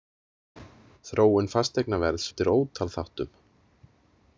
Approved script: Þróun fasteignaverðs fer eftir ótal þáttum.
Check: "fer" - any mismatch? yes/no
yes